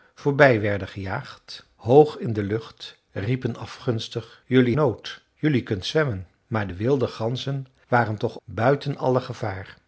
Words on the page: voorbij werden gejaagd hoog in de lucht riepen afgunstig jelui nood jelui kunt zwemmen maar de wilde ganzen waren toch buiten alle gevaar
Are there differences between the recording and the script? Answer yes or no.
no